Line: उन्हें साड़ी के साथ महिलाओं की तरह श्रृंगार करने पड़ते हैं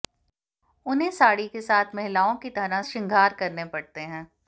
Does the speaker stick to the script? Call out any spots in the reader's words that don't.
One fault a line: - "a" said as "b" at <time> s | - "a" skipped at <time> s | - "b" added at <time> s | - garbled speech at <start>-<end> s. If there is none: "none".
none